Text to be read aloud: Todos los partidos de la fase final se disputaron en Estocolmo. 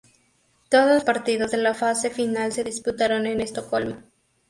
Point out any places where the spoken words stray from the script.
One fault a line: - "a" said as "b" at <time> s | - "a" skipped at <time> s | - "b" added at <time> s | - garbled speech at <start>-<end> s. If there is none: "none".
- "los" skipped at 1.1 s